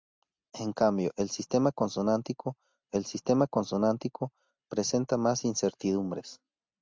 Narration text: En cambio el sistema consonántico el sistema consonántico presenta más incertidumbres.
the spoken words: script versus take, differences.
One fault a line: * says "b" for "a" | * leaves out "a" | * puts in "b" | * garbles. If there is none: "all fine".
all fine